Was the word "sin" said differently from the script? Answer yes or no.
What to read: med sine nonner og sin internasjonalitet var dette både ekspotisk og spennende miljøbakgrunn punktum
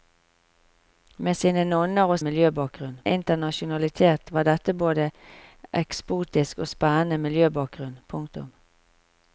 yes